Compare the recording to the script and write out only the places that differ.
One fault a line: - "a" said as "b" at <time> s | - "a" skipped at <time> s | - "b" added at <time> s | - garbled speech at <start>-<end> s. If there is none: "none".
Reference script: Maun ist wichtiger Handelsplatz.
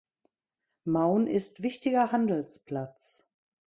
none